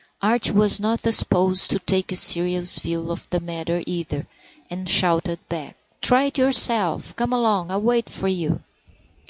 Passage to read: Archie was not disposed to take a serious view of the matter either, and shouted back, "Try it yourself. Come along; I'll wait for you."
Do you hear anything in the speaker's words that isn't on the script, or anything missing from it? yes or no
no